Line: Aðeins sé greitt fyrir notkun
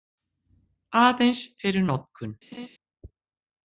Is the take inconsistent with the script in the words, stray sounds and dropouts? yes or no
yes